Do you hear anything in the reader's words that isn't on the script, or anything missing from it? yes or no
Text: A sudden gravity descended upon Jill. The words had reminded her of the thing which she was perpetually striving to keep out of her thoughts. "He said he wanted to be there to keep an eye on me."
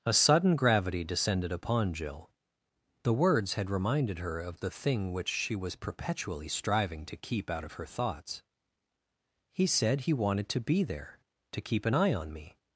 no